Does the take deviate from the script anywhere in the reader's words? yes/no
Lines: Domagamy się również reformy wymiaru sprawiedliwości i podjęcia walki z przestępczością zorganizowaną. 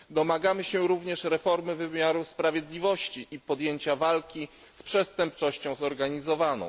no